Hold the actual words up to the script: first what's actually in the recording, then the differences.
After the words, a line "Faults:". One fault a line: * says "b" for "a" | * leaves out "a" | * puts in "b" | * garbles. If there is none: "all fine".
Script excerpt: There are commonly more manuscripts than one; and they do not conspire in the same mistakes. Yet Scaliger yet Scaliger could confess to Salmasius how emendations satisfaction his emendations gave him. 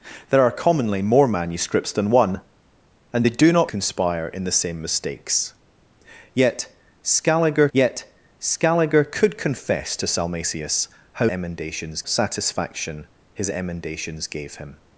There are commonly more manuscripts than one; and they do not conspire in the same mistakes. Yet Scaliger yet Scaliger could confess to Salmasius how emendations satisfaction his emendations gave him.
Faults:
all fine